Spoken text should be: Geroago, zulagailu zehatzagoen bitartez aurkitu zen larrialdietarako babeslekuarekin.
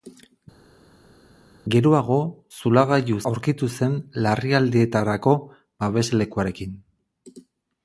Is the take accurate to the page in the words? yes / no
no